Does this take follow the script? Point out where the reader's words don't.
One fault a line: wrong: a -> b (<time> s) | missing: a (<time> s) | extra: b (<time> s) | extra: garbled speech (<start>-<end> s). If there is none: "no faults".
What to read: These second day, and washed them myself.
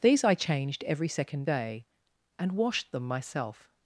extra: I changed every (0.2 s)